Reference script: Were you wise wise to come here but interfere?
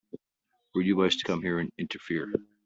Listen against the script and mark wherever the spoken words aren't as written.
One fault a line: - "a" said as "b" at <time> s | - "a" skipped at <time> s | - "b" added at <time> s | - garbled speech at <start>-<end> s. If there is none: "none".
- "wise" skipped at 1.2 s
- "but" said as "and" at 1.6 s